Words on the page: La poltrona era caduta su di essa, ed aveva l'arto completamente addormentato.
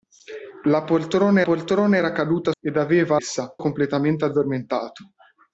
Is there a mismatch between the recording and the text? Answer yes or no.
yes